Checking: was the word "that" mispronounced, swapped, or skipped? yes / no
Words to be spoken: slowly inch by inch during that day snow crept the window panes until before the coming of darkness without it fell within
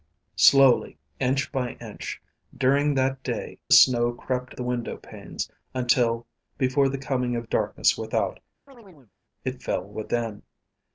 no